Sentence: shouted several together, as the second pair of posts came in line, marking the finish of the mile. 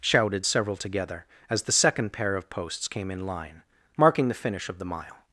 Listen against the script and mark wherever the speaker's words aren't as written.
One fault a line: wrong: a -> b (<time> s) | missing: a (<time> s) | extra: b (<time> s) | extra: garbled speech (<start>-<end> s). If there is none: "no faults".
no faults